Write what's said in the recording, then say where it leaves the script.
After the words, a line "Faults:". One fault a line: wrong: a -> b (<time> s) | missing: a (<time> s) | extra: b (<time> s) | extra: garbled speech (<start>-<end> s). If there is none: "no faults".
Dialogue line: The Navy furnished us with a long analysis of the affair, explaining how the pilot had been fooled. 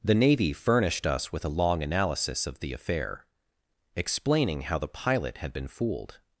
The Navy furnished us with a long analysis of the affair, explaining how the pilot had been fooled.
Faults:
no faults